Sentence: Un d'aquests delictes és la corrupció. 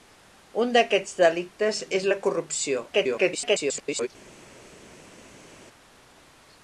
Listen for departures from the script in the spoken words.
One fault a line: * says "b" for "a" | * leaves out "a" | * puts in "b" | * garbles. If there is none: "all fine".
* garbles